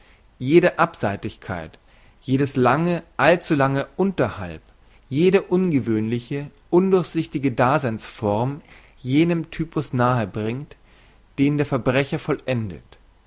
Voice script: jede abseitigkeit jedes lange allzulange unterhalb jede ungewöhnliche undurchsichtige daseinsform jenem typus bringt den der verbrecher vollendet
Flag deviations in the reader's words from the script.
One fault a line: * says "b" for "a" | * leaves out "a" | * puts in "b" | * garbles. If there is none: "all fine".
* puts in "nahe"